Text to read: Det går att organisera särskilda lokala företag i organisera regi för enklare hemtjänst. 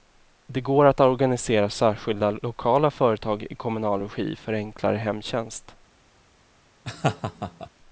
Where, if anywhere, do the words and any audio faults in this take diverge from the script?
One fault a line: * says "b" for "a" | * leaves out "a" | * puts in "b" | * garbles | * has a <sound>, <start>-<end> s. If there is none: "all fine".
* says "kommunal" for "organisera"
* has a laugh, 6.8-7.7 s